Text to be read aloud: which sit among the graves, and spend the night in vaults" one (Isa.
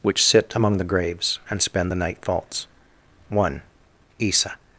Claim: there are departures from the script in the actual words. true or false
true